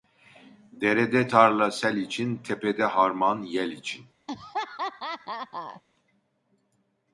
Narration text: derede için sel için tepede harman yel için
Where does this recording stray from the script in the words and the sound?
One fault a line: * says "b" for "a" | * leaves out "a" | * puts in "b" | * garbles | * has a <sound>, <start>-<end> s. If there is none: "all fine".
* says "tarla" for "için"
* has a laugh, 4.3-5.8 s